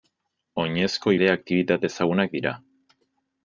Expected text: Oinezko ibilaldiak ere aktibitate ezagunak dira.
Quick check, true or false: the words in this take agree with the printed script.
false